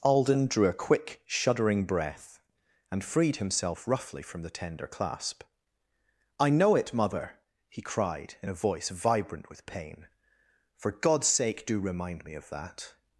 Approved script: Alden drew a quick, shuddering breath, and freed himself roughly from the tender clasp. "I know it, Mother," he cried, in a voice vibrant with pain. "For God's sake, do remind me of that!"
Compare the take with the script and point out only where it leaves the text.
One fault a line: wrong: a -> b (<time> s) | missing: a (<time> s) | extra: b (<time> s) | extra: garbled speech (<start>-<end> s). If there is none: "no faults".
no faults